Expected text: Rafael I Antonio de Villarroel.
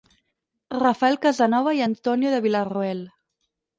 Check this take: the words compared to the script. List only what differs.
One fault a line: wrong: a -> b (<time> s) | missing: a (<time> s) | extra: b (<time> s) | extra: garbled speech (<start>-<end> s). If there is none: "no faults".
extra: Casanova (1.2 s)